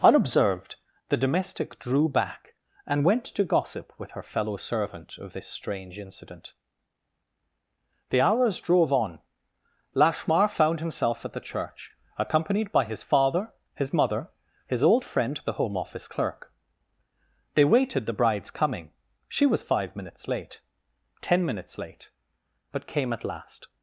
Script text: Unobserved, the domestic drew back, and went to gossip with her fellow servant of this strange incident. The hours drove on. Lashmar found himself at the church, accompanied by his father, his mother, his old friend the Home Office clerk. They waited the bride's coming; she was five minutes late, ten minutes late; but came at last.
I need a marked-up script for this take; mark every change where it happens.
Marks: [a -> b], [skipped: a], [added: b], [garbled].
Unobserved, the domestic drew back, and went to gossip with her fellow servant of this strange incident. The hours drove on. Lashmar found himself at the church, accompanied by his father, his mother, his old friend the Home Office clerk. They waited the bride's coming; she was five minutes late, ten minutes late; but came at last.